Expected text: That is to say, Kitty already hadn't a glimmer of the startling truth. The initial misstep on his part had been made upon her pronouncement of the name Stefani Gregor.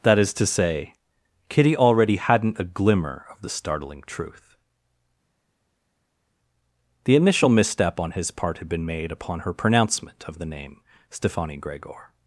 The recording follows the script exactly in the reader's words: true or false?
true